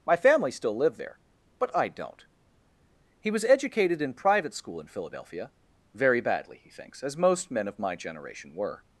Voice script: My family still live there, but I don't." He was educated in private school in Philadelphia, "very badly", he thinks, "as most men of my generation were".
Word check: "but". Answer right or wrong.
right